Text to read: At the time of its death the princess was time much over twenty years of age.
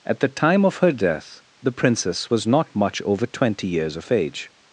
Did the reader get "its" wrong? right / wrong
wrong